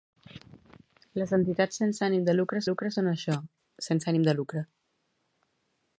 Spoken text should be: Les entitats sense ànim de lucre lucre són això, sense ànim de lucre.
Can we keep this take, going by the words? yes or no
yes